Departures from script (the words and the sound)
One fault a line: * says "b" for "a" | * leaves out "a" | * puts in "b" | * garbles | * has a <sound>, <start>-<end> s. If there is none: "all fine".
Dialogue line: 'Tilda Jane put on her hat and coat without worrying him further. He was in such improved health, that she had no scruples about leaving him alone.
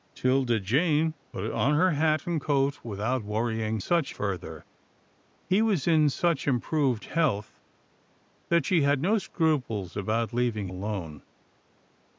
* says "such" for "him"
* leaves out "him"